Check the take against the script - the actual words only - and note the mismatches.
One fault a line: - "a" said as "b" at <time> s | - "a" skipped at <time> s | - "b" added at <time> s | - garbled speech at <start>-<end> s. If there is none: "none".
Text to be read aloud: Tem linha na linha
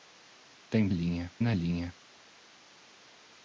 none